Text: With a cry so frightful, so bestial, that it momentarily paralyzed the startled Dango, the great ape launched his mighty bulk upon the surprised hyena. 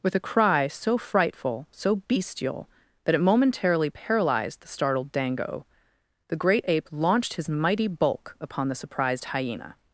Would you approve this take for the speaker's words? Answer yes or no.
yes